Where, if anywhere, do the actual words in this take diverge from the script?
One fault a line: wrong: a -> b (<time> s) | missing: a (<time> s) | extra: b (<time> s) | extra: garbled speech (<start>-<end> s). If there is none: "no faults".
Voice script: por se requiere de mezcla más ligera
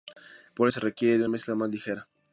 no faults